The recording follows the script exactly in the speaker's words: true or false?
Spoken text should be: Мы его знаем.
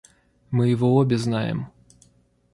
false